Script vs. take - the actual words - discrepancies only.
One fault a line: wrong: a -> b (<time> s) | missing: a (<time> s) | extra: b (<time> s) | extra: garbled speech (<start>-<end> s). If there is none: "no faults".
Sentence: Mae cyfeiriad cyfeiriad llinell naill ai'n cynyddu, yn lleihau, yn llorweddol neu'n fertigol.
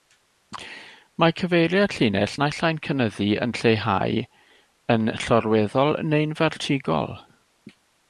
missing: cyfeiriad (1.9 s)